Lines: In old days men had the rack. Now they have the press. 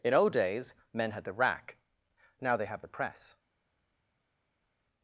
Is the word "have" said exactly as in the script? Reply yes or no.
yes